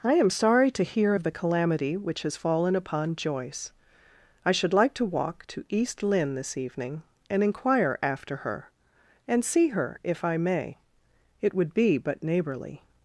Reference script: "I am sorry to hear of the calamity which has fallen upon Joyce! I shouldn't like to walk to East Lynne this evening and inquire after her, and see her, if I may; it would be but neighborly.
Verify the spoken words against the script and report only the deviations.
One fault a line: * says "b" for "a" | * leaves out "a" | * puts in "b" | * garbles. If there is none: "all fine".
* says "should" for "shouldn't"